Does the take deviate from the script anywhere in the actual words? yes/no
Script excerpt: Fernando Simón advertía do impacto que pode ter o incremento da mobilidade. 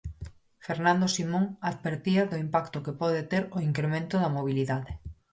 no